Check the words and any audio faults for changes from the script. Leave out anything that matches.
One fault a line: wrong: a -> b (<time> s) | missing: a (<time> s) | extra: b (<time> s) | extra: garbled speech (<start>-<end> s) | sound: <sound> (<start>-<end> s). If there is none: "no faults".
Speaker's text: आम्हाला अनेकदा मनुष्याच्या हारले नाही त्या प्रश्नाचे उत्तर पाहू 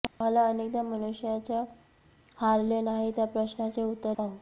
sound: dropout (0.1-0.2 s)